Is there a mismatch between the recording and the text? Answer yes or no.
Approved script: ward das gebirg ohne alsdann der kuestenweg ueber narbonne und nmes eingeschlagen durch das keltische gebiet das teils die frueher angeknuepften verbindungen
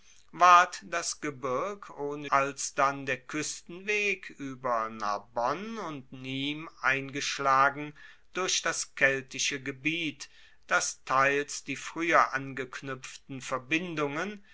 no